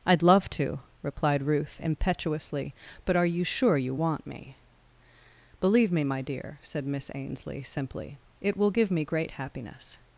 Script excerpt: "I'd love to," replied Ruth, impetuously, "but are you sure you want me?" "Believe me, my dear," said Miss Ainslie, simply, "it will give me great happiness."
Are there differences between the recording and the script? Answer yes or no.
no